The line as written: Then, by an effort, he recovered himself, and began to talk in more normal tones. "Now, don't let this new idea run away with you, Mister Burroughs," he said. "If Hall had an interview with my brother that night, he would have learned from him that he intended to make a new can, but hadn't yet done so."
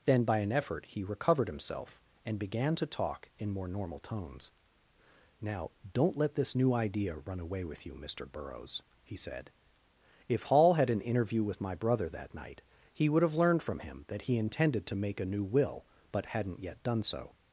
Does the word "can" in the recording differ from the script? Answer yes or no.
yes